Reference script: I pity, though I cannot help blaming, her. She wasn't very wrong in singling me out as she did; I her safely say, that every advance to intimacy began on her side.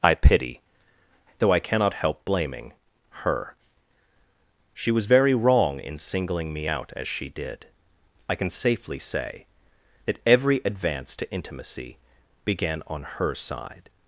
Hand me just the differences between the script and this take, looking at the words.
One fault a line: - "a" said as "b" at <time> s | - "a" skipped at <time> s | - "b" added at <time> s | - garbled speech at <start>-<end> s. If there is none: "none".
- "wasn't" said as "was" at 4.9 s
- "her" said as "can" at 8.3 s